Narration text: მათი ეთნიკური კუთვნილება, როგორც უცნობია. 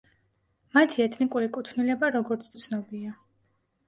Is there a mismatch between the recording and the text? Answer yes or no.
no